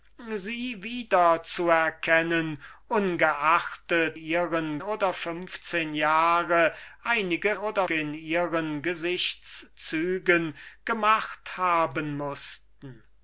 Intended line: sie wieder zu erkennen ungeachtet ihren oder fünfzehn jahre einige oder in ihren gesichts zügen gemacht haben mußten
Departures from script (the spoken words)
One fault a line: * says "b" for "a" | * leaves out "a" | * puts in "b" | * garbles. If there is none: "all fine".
all fine